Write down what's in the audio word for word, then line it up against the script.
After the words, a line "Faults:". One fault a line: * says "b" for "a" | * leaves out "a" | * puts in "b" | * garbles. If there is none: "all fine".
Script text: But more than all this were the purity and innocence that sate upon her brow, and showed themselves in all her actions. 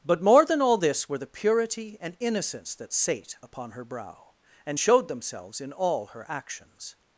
But more than all this were the purity and innocence that sate upon her brow, and showed themselves in all her actions.
Faults:
all fine